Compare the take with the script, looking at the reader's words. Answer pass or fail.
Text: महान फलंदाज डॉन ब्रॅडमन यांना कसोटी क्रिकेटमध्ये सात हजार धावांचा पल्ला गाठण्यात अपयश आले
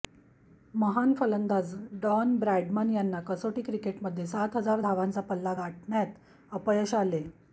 pass